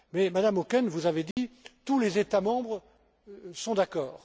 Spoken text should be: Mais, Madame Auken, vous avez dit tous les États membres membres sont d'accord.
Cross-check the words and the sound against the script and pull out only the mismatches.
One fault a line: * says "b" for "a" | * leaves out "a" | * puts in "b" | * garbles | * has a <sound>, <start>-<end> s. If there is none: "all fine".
* has a dropout, 1.3-1.4 s
* leaves out "membres"